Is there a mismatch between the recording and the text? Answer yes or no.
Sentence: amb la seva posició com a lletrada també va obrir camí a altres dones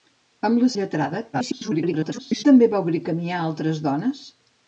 yes